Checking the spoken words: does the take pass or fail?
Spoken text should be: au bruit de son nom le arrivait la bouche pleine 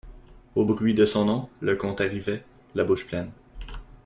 fail